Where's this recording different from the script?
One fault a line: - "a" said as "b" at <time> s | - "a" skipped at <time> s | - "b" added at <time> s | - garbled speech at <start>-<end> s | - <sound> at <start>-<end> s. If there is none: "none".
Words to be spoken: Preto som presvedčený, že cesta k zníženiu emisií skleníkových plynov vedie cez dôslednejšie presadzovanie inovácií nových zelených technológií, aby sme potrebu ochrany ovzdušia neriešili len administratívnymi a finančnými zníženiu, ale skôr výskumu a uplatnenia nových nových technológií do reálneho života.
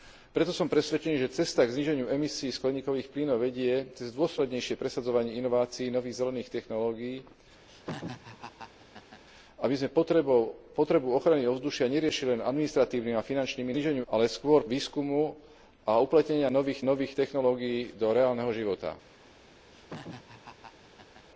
- laugh at 7.7-9.2 s
- laugh at 19.7-21.3 s